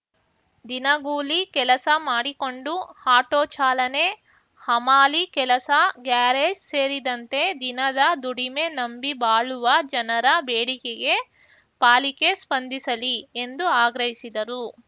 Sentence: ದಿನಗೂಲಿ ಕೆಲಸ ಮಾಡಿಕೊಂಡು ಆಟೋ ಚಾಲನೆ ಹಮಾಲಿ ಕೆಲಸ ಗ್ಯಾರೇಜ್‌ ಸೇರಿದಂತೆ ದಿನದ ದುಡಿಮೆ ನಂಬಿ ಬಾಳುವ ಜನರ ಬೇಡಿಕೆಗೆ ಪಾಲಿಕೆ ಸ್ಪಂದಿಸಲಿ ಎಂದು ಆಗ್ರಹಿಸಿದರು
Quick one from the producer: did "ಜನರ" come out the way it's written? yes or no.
yes